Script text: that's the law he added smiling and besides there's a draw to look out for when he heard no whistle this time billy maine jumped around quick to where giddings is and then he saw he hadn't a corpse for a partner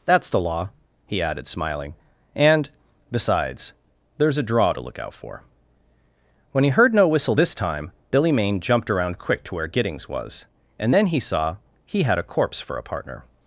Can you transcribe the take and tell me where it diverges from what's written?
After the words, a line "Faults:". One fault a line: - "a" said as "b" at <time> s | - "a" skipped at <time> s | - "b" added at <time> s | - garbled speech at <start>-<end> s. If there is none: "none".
that's the law he added smiling and besides there's a draw to look out for when he heard no whistle this time billy maine jumped around quick to where giddings was and then he saw he had a corpse for a partner
Faults:
- "is" said as "was" at 10.1 s
- "hadn't" said as "had" at 12.0 s